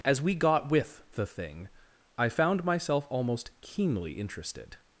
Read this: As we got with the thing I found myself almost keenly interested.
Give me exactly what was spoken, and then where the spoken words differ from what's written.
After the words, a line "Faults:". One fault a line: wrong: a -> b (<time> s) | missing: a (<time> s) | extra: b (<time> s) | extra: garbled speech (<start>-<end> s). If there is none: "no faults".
As we got with the thing I found myself almost keenly interested.
Faults:
no faults